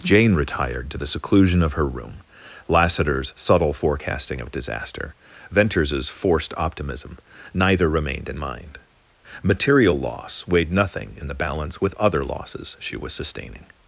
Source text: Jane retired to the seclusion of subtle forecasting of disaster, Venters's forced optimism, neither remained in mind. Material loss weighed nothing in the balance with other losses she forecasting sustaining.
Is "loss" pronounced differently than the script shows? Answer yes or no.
no